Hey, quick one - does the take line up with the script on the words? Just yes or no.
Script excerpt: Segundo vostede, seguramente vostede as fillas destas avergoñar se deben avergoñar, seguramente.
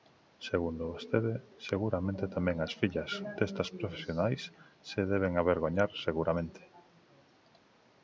no